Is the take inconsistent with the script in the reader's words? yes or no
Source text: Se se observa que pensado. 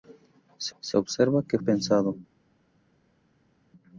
no